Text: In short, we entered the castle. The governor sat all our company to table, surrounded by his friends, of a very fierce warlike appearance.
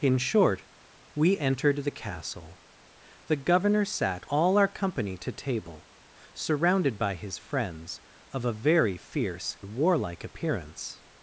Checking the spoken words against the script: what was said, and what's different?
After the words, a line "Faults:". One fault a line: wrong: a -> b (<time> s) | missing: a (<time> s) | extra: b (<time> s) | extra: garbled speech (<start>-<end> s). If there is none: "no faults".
In short, we entered the castle. The governor sat all our company to table, surrounded by his friends, of a very fierce warlike appearance.
Faults:
no faults